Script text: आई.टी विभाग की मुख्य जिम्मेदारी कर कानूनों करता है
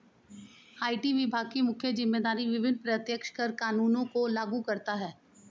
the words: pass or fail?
fail